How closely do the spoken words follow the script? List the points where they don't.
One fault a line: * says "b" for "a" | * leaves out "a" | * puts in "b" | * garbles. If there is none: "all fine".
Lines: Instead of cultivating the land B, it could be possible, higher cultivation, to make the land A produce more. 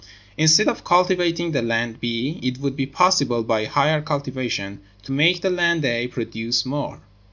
* says "would" for "could"
* puts in "by"